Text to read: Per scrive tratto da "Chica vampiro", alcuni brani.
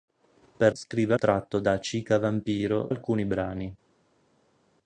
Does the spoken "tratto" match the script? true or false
true